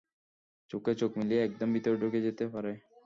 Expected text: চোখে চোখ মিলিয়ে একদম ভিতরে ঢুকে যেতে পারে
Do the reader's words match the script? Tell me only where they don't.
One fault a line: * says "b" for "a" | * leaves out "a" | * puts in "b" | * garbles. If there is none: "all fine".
all fine